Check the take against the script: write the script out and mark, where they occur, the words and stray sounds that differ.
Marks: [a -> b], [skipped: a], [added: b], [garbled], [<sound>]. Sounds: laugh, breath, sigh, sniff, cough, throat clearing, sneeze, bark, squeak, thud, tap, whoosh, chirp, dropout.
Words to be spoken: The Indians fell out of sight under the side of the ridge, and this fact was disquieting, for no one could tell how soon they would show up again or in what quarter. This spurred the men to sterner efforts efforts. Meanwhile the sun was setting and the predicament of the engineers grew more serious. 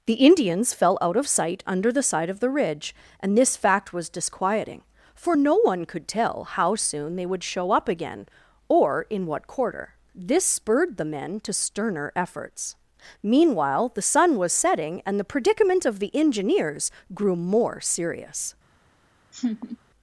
The Indians fell out of sight under the side of the ridge, and this fact was disquieting, for no one could tell how soon they would show up again or in what quarter. This spurred the men to sterner efforts [skipped: efforts.] Meanwhile the sun was setting and the predicament of the engineers grew more serious. [laugh]